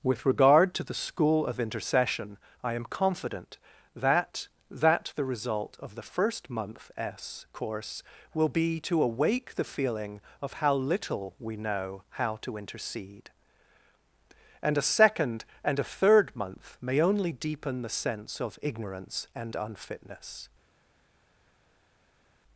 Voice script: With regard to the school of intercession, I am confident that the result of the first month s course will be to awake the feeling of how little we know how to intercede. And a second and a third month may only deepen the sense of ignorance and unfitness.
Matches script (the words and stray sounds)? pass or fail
fail